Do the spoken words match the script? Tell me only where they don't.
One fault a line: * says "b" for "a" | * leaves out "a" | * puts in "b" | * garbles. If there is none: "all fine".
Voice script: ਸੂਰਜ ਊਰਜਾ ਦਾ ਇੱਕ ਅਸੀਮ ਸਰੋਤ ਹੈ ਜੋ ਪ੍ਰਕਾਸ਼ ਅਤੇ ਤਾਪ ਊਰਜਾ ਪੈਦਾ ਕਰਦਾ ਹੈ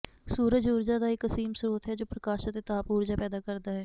all fine